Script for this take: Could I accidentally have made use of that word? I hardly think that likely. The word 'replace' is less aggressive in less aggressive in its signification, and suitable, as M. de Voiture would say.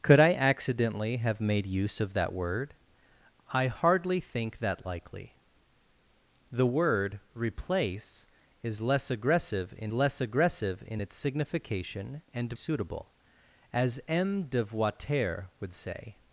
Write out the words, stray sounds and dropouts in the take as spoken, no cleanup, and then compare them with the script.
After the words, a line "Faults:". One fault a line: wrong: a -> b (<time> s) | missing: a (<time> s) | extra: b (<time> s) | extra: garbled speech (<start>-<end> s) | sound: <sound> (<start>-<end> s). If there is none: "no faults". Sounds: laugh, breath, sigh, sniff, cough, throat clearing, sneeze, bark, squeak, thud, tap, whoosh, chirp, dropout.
Could I accidentally have made use of that word? I hardly think that likely. The word 'replace' is less aggressive in less aggressive in its signification, and suitable, as M. de Voiture would say.
Faults:
no faults